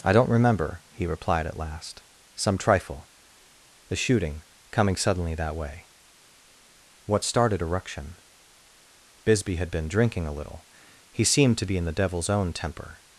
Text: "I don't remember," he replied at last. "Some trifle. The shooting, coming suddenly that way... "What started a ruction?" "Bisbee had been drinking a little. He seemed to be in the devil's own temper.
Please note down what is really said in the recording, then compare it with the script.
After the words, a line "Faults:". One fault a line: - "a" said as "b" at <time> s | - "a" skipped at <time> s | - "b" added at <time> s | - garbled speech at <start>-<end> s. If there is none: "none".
"I don't remember," he replied at last. "Some trifle. The shooting, coming suddenly that way... "What started a ruction?" "Bisbee had been drinking a little. He seemed to be in the devil's own temper.
Faults:
none